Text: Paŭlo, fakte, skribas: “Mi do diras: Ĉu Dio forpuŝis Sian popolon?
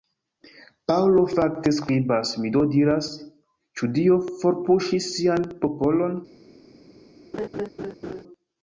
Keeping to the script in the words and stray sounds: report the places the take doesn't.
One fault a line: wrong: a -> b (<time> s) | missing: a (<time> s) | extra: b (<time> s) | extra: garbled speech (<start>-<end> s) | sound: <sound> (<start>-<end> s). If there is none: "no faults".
sound: laugh (7.3-8.2 s)